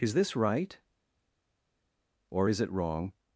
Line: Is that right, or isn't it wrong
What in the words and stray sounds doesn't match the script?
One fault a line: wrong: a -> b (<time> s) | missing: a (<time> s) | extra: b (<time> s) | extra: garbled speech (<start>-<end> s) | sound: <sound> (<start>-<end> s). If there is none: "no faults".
wrong: that -> this (0.1 s)
wrong: isn't -> is (2.5 s)